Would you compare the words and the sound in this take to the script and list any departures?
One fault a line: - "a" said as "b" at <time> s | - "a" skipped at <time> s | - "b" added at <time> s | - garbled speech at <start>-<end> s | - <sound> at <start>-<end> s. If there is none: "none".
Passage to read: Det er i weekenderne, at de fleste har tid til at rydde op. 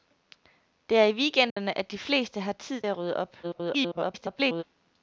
- dropout at 1.5-1.6 s
- "til" skipped at 2.8 s
- garbled speech at 3.4-4.6 s